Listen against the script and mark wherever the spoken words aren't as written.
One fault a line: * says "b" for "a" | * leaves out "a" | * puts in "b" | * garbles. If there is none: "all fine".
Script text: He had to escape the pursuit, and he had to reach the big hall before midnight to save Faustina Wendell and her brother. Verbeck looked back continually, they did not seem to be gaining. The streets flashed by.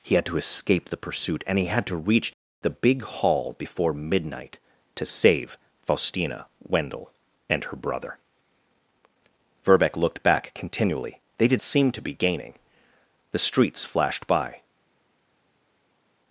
* leaves out "not"